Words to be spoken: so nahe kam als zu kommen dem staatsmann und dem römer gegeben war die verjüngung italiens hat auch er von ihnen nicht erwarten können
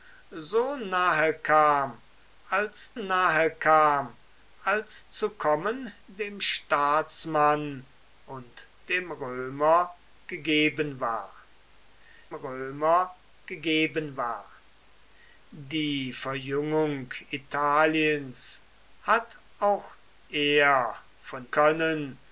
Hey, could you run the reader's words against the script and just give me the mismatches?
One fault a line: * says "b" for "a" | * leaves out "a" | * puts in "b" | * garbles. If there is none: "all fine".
* puts in "nahe kam als"
* puts in "römer gegeben war"
* leaves out "ihnen nicht erwarten"